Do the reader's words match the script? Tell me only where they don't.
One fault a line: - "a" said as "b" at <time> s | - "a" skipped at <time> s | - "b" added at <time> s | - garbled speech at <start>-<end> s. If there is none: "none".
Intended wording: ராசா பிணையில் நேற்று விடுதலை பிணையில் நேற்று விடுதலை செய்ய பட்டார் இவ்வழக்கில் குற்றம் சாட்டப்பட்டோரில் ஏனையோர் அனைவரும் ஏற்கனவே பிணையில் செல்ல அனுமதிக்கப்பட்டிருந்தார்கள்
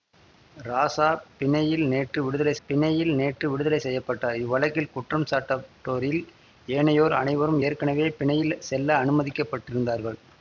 none